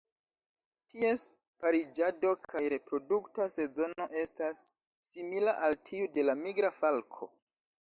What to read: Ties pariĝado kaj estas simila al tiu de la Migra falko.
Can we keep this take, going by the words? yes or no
no